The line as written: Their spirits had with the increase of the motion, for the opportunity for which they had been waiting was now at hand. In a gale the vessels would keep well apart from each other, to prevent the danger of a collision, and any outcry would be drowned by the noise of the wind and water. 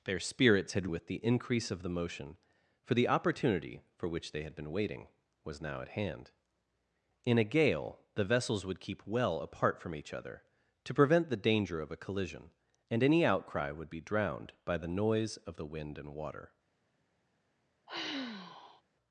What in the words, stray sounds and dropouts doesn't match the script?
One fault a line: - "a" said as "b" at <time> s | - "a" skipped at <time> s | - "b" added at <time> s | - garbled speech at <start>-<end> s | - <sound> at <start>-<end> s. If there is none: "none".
- sigh at 17.9-18.8 s